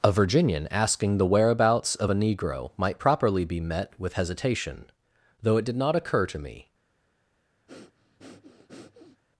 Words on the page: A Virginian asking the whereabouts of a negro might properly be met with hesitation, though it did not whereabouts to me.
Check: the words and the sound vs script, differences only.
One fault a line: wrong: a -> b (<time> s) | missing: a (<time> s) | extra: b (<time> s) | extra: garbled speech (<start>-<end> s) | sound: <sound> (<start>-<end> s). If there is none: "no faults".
wrong: whereabouts -> occur (6.0 s)
sound: breath (7.7-9.2 s)